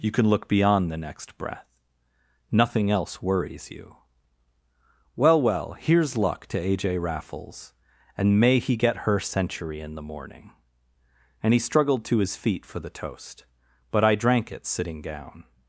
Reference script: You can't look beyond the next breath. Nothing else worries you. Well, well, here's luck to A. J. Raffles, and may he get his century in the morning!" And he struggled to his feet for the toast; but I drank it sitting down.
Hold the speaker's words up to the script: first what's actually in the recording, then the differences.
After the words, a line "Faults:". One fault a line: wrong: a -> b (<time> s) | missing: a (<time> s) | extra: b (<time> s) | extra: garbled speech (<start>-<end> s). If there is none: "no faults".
You can look beyond the next breath. Nothing else worries you. Well, well, here's luck to A. J. Raffles, and may he get her century in the morning!" And he struggled to his feet for the toast; but I drank it sitting down.
Faults:
wrong: can't -> can (0.1 s)
wrong: his -> her (9.0 s)